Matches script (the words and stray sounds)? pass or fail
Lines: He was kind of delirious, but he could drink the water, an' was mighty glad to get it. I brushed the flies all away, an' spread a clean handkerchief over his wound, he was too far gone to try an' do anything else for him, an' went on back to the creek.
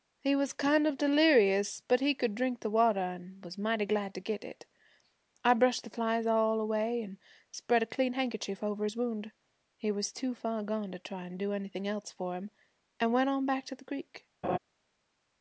fail